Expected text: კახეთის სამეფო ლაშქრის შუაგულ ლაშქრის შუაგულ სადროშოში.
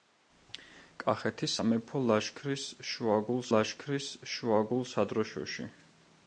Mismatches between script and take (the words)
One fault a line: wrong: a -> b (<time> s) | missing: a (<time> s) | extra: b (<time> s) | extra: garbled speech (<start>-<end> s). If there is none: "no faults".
no faults